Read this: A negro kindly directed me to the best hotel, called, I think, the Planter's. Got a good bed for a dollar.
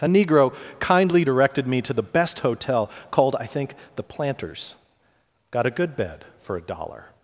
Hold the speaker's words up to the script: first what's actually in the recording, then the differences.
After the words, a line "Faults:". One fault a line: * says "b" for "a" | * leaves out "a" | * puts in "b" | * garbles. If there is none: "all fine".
A negro kindly directed me to the best hotel, called, I think, the Planter's. Got a good bed for a dollar.
Faults:
all fine